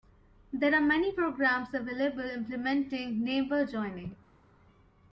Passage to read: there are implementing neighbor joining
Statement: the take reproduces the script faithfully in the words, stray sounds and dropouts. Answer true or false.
false